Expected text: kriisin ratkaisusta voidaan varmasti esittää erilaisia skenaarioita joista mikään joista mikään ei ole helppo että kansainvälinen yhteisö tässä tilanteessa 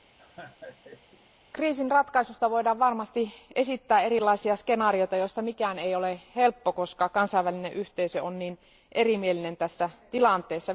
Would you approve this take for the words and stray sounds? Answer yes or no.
no